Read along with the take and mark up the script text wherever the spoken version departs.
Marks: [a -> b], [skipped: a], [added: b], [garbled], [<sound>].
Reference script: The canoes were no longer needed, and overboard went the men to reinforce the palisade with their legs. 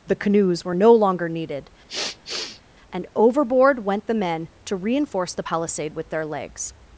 The canoes were no longer needed, [sniff] and overboard went the men to reinforce the palisade with their legs.